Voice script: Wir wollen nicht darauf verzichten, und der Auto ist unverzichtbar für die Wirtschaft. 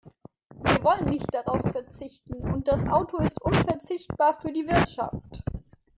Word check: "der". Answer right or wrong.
wrong